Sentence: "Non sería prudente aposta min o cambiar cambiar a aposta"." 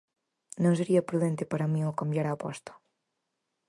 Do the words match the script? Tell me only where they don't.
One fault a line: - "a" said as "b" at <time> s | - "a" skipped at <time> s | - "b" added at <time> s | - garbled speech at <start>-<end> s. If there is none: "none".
- "aposta" said as "para" at 1.5 s
- "cambiar" skipped at 2.2 s